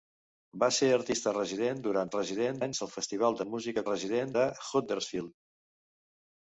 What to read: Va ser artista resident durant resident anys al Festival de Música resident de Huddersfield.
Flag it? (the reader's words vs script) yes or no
no